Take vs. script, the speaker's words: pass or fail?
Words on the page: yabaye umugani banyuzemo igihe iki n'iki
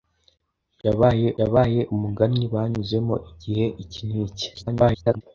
fail